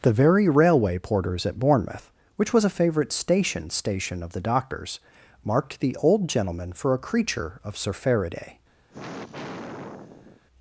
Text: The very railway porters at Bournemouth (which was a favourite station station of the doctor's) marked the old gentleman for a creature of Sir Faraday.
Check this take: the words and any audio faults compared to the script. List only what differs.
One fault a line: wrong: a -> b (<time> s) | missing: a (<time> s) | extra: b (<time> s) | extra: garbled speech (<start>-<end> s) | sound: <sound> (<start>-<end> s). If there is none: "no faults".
sound: sigh (8.9-10.4 s)